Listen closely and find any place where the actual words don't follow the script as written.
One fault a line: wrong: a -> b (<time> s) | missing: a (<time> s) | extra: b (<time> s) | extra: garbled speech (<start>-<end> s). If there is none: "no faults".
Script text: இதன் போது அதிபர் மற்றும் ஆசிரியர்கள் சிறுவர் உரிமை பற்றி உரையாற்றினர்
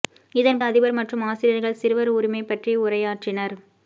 missing: போது (0.6 s)